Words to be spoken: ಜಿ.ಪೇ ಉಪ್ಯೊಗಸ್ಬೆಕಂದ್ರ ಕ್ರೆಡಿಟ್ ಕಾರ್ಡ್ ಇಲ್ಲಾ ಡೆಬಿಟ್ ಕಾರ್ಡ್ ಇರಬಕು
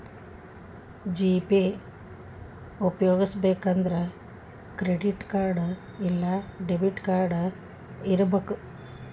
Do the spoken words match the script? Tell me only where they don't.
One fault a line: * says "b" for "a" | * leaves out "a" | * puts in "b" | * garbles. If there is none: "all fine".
all fine